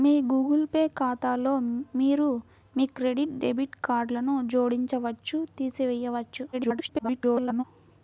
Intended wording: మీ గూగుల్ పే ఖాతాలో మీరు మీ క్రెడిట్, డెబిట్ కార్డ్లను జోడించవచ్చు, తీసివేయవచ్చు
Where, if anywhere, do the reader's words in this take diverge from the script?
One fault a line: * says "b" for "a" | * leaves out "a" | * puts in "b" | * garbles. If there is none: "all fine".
* garbles